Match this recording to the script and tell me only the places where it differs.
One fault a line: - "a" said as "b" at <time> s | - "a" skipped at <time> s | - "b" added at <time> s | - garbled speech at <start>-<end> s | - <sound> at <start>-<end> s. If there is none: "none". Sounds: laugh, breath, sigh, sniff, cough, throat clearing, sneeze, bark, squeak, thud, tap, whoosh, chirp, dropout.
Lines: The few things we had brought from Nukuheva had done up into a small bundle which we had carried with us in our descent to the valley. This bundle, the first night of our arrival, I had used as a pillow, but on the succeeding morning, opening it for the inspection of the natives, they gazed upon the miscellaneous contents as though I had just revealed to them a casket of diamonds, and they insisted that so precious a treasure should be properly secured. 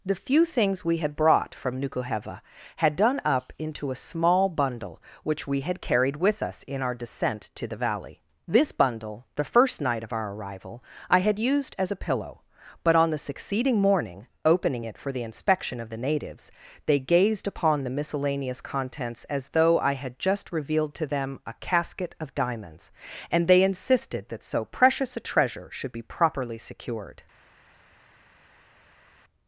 none